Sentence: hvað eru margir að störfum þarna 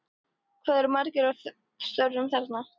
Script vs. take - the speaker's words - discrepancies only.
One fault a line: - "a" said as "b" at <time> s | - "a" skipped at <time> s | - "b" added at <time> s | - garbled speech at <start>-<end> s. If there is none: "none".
none